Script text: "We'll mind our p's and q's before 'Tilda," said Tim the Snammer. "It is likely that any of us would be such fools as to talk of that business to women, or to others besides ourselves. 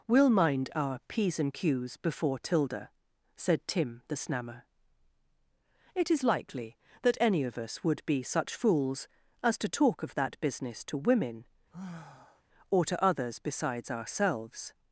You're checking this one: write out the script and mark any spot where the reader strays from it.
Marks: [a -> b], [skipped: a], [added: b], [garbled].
"We'll mind our p's and q's before 'Tilda," said Tim the Snammer. "It is likely that any of us would be such fools as to talk of that business to women, or to others besides ourselves.